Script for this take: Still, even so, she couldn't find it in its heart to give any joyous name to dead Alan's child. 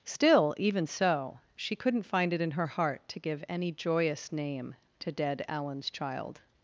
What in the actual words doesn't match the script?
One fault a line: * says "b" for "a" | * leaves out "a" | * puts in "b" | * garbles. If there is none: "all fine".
* says "her" for "its"